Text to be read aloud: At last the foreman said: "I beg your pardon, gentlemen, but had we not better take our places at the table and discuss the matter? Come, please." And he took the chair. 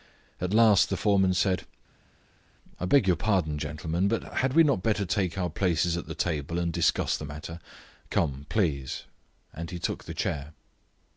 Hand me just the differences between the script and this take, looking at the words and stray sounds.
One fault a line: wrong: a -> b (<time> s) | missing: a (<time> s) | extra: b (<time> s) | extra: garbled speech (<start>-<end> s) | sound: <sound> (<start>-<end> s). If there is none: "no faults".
no faults